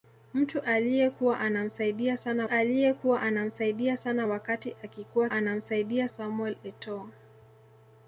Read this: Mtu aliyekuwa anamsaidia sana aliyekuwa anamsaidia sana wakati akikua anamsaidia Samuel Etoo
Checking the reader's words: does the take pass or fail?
pass